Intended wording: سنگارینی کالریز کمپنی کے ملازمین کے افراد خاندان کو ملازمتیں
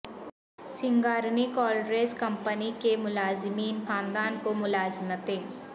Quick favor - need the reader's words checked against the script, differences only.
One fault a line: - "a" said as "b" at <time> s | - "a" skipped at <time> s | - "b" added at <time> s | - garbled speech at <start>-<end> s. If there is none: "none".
- "کے افراد" skipped at 3.8 s